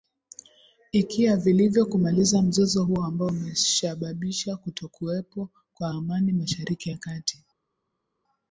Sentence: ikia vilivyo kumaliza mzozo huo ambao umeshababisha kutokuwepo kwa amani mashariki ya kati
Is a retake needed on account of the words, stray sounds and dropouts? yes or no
no